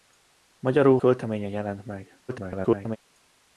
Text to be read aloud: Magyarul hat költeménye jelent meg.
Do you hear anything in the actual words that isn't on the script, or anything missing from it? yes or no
yes